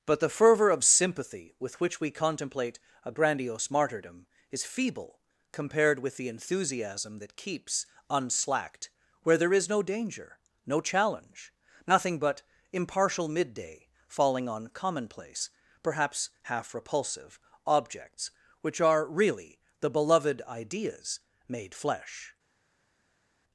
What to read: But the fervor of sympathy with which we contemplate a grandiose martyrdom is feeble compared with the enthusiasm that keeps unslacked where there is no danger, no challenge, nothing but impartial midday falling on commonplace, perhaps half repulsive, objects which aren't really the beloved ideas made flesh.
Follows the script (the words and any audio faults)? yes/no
no